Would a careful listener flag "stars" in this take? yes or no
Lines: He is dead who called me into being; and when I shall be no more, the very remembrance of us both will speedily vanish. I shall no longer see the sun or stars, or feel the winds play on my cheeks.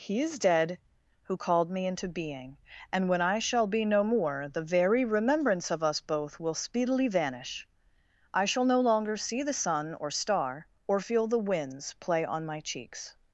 yes